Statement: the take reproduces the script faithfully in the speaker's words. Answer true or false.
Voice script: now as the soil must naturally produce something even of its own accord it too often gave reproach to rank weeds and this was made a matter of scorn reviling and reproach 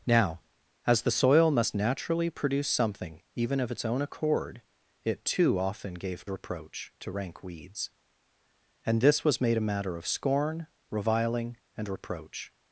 true